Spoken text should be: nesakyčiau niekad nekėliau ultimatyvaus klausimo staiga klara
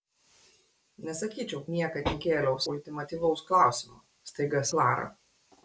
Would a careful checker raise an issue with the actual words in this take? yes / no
no